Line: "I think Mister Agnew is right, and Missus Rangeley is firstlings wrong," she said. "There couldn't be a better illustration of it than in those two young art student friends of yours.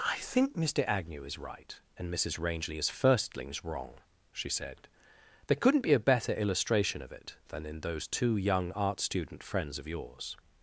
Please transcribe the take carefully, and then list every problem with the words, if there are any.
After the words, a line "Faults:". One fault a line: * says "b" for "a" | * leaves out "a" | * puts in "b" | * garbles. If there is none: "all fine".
"I think Mister Agnew is right, and Missus Rangeley is firstlings wrong," she said. "There couldn't be a better illustration of it than in those two young art student friends of yours.
Faults:
all fine